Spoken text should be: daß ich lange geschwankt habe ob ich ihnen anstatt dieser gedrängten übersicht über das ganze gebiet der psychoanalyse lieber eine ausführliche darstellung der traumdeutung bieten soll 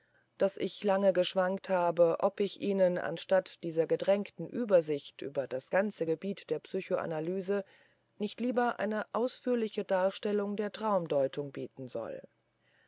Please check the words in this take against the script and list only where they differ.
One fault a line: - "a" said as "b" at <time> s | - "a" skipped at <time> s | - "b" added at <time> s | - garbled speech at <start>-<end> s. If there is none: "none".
- "nicht" added at 8.2 s